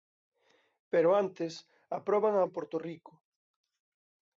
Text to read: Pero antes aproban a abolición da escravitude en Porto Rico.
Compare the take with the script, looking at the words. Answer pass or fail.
fail